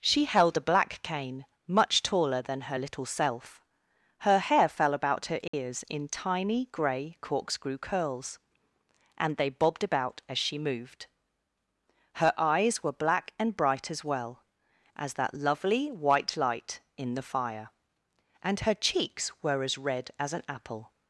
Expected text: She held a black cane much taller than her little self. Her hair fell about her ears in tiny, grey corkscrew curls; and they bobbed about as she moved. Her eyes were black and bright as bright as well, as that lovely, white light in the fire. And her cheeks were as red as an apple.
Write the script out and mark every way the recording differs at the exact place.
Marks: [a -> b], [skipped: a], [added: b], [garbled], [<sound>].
She held a black cane much taller than her little self. Her hair fell about her ears [dropout] in tiny, grey corkscrew curls; and they bobbed about as she moved. Her eyes were black and bright as [skipped: bright as] well, as that lovely, white light in the fire. And her cheeks were as red as an apple.